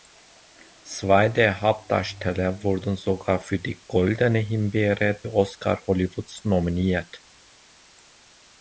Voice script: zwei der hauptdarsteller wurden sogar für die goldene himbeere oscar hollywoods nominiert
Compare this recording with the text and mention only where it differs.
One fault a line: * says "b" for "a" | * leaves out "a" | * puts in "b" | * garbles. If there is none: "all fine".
all fine